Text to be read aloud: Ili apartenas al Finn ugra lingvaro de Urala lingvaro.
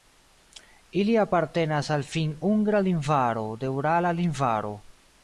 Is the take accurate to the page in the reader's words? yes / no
yes